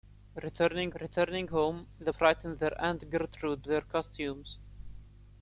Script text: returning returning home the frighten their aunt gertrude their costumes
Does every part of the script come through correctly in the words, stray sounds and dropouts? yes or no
yes